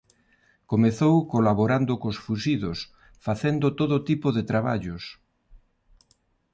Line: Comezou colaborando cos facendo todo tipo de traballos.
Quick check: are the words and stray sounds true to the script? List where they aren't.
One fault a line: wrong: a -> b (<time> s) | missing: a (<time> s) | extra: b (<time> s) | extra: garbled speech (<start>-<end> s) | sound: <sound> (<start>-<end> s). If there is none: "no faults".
extra: fuxidos (2.2 s)